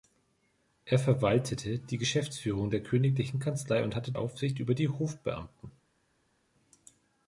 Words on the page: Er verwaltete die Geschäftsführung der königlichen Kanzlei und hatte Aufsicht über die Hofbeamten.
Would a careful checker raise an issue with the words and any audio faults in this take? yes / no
no